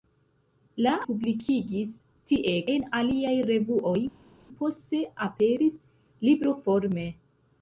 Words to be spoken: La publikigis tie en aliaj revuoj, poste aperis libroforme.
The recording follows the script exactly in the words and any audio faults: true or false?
true